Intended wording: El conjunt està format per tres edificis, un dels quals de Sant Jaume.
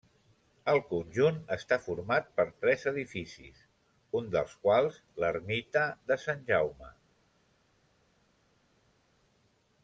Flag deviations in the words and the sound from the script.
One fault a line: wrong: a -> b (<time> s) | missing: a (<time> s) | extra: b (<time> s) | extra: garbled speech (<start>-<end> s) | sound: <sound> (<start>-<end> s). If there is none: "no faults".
extra: l'ermita (5.2 s)